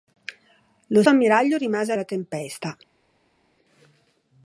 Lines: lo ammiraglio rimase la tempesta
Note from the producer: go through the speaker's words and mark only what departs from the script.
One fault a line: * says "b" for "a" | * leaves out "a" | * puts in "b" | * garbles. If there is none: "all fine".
all fine